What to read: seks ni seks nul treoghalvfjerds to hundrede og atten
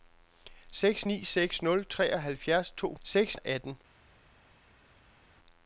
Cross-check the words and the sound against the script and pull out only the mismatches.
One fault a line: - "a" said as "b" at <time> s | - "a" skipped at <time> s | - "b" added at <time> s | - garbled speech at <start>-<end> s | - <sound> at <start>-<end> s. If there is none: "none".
- "hundrede" said as "seks" at 3.0 s